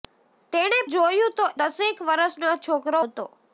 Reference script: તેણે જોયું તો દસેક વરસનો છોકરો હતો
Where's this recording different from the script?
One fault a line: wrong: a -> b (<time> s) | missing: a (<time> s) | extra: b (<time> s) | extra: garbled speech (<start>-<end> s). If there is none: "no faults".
no faults